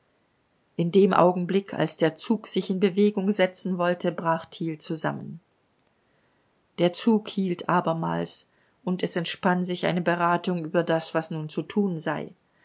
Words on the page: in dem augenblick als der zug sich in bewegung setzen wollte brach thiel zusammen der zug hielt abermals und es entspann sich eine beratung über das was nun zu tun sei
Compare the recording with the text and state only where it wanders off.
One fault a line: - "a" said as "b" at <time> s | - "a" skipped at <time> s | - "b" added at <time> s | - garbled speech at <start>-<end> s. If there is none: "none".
none